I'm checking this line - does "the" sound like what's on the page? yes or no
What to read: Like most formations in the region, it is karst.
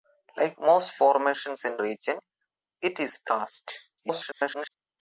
no